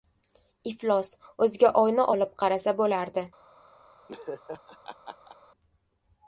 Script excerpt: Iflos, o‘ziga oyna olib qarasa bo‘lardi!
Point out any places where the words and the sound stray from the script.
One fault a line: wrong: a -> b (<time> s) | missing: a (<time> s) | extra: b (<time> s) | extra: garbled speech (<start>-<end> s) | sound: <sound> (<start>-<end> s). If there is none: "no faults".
sound: laugh (4.1-5.4 s)